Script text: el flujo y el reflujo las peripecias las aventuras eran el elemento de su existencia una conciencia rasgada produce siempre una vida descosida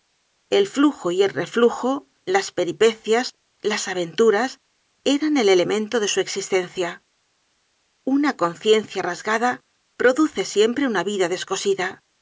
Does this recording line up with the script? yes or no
yes